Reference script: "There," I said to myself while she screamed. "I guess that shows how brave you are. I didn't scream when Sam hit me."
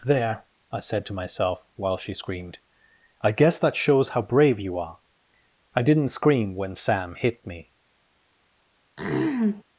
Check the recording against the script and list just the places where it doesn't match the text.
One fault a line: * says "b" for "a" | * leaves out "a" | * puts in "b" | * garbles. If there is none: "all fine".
all fine